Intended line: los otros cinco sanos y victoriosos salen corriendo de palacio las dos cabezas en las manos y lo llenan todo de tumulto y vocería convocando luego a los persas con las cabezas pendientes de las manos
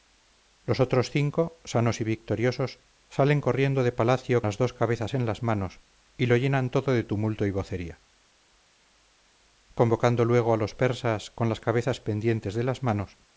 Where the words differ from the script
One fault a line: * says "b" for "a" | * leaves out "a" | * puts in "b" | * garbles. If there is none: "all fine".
all fine